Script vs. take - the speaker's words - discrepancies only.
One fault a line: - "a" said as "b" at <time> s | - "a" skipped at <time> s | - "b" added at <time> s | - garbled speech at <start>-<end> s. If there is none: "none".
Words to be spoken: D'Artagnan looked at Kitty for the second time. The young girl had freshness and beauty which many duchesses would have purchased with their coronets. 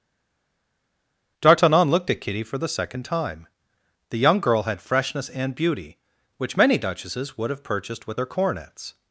none